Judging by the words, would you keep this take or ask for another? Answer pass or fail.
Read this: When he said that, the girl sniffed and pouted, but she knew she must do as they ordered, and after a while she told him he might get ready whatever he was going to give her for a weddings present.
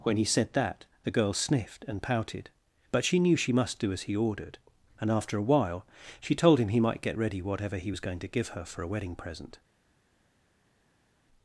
fail